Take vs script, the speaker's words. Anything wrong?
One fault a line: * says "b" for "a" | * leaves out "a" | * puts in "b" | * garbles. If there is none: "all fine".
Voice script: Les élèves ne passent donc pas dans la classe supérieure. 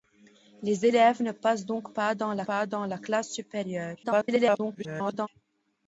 * puts in "pas dans la"
* garbles